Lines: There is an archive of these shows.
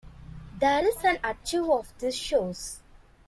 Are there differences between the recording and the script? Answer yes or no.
no